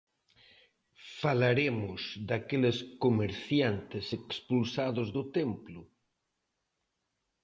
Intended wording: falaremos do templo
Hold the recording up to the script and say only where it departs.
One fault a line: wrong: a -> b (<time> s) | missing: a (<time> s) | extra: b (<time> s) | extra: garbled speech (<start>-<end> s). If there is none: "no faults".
extra: daqueles comerciantes expulsados (2.3 s)